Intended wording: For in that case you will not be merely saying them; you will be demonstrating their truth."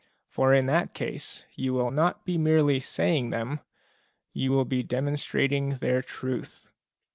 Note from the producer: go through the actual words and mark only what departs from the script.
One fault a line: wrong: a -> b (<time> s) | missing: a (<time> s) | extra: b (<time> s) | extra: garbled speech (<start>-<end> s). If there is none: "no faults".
no faults